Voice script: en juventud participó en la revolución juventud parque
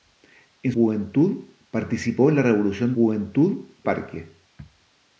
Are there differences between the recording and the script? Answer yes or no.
no